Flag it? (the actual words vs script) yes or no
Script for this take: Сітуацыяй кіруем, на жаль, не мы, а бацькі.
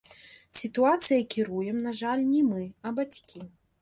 no